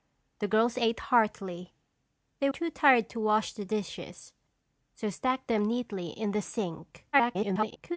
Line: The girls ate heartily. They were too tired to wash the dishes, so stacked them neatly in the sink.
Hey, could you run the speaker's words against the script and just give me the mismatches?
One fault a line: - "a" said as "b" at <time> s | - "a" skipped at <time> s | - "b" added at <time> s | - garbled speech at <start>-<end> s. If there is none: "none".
- "were" skipped at 2.5 s
- garbled speech at 7.1-8.0 s